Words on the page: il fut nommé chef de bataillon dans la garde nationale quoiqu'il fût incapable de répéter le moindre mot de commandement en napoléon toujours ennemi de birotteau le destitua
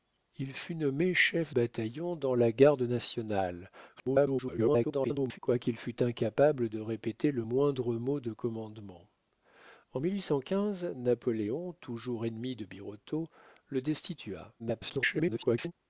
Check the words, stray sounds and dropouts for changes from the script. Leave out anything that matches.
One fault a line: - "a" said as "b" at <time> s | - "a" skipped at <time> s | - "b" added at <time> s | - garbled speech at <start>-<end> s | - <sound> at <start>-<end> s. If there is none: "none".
- "de" skipped at 1.6 s
- garbled speech at 4.0-5.4 s
- garbled speech at 14.6-15.7 s